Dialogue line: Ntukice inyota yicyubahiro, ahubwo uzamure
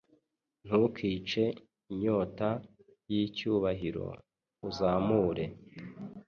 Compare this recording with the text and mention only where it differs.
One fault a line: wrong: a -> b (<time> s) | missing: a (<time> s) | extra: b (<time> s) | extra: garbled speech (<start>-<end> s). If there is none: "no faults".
missing: ahubwo (4.1 s)